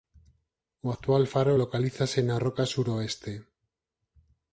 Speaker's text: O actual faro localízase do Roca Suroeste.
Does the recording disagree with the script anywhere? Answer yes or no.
yes